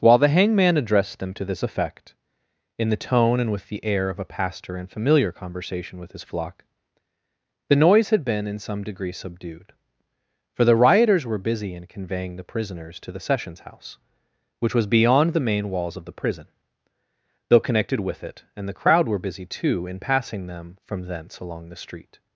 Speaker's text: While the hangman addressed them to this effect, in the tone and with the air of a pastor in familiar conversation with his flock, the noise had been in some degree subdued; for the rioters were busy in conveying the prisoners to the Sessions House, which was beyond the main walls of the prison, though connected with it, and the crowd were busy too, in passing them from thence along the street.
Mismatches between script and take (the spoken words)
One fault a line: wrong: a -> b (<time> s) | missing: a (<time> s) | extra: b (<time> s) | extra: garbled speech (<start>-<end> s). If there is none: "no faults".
no faults